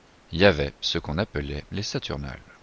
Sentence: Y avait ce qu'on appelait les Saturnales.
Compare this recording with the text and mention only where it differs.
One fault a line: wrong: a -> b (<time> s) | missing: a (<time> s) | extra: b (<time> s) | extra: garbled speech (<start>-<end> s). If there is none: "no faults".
no faults